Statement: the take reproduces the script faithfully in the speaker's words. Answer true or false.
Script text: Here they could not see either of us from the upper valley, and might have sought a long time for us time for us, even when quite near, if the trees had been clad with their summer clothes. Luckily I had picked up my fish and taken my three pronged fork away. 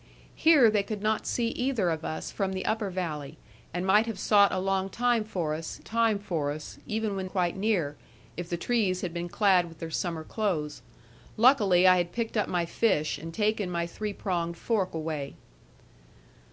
true